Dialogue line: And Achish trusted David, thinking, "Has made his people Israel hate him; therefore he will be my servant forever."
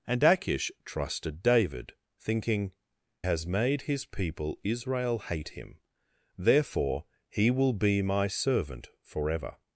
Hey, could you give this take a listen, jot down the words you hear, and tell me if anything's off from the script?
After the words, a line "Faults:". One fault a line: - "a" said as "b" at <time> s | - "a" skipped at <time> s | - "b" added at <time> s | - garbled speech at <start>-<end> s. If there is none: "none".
And Achish trusted David, thinking, "Has made his people Israel hate him; therefore he will be my servant forever."
Faults:
none